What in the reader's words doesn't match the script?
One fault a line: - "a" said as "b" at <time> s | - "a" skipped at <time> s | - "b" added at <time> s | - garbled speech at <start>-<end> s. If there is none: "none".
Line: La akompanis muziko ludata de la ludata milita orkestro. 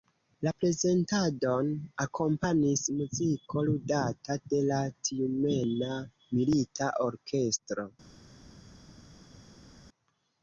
- "prezentadon" added at 0.6 s
- "ludata" said as "tjumena" at 5.1 s